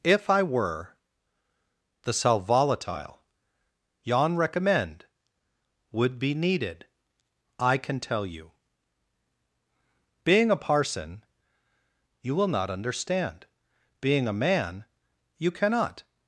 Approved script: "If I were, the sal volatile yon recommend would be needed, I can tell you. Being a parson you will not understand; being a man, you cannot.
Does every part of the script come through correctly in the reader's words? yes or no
yes